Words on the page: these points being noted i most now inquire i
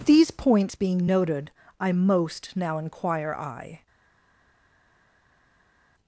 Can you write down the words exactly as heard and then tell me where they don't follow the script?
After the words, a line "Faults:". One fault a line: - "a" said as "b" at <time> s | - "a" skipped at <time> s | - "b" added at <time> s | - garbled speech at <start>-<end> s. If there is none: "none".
these points being noted i most now inquire i
Faults:
none